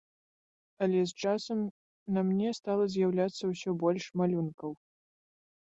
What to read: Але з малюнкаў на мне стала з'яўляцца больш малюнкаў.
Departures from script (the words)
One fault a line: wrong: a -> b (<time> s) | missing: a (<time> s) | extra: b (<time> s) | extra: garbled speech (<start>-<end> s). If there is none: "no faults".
wrong: малюнкаў -> часам (1.3 s)
extra: ўсё (3.6 s)